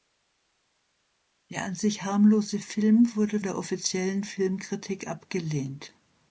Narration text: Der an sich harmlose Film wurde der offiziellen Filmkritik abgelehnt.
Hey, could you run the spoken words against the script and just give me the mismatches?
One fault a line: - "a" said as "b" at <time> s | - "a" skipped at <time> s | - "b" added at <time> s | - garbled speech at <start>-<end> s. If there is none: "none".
none